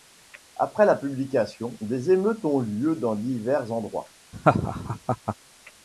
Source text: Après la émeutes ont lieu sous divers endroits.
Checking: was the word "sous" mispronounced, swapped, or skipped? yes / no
yes